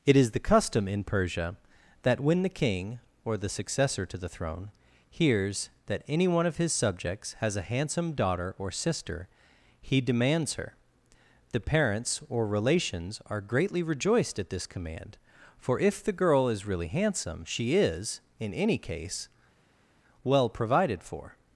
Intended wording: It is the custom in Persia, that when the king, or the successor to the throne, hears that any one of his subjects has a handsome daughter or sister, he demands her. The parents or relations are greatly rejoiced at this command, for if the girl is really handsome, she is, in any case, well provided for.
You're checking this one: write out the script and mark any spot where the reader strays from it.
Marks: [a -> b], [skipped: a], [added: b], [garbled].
It is the custom in Persia, that when the king, or the successor to the throne, hears that any one of his subjects has a handsome daughter or sister, he demands her. The parents or relations are greatly rejoiced at this command, for if the girl is really handsome, she is, in any case, well provided for.